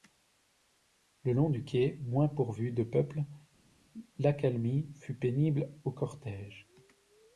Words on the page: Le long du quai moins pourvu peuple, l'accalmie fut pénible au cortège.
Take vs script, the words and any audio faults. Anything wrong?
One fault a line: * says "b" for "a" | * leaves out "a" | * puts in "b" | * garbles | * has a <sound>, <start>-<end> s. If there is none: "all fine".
* puts in "de"